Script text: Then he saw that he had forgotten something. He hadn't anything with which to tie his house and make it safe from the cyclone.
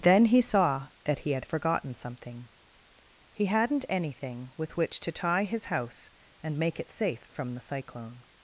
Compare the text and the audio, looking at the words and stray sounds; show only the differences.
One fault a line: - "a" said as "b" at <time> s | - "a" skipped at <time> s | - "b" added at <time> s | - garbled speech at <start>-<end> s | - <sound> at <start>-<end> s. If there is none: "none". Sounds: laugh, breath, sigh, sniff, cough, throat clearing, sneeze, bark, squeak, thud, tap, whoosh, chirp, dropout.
none